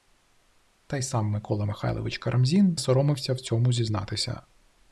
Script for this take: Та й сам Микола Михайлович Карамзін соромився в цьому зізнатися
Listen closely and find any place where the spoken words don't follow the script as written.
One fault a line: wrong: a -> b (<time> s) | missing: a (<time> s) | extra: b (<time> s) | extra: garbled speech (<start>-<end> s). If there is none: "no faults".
no faults